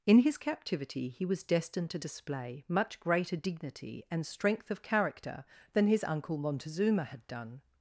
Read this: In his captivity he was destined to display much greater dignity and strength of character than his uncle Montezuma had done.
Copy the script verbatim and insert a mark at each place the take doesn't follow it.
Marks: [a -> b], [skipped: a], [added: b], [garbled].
In his captivity he was destined to display much greater dignity and strength of character than his uncle Montezuma had done.